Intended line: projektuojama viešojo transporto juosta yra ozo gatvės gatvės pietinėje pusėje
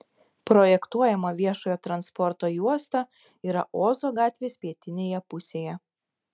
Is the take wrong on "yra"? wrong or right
right